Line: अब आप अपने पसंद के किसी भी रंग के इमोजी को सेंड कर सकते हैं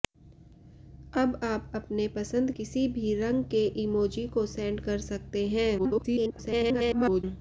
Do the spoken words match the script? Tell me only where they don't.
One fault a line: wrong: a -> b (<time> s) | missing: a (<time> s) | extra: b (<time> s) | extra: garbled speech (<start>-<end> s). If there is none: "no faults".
missing: के (2.5 s)
extra: garbled speech (5.8-7.2 s)